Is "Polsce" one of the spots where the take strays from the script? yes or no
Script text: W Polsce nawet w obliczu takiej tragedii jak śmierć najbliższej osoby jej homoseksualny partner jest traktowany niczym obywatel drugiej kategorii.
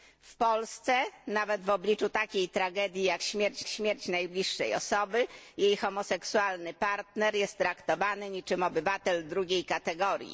no